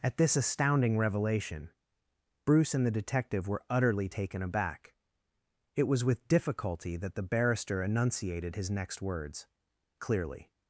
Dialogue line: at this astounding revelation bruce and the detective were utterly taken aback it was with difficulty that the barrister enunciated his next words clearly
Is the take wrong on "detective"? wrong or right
right